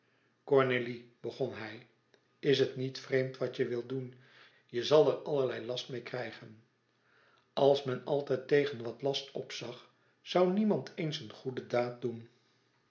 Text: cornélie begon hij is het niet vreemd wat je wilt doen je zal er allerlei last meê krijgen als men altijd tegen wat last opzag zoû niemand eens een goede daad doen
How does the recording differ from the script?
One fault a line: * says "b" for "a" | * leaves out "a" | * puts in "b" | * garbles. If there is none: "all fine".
all fine